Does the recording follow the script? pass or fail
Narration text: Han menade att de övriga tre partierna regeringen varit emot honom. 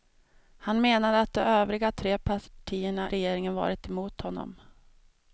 pass